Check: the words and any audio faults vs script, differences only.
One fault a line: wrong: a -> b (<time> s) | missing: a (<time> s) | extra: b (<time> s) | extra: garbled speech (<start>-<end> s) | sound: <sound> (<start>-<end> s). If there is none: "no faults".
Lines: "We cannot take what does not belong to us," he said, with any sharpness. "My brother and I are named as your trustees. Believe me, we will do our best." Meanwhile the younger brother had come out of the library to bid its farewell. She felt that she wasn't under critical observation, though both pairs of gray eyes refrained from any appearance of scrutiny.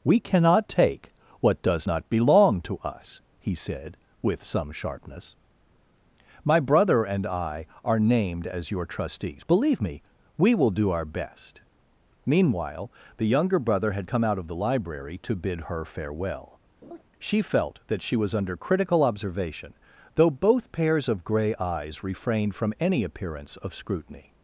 wrong: any -> some (4.4 s)
wrong: its -> her (15.6 s)
sound: laugh (16.8-17.0 s)
wrong: wasn't -> was (18.2 s)